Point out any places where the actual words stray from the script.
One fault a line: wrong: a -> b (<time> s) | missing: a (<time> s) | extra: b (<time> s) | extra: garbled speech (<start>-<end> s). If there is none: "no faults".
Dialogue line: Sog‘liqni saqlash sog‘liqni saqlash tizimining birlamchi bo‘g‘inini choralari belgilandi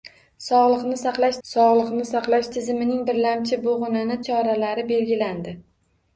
no faults